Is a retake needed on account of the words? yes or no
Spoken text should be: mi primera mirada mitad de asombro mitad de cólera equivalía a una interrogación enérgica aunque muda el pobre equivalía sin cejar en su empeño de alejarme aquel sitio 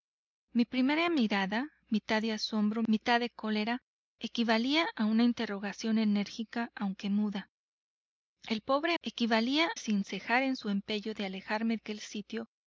no